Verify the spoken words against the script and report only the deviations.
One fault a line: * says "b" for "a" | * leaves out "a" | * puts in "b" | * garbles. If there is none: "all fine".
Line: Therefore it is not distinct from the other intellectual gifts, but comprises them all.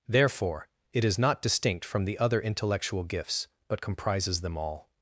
all fine